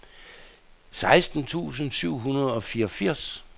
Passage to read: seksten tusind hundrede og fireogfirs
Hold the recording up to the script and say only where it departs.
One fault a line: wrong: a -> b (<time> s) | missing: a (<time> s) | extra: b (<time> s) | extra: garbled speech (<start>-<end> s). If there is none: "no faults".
extra: syv (1.9 s)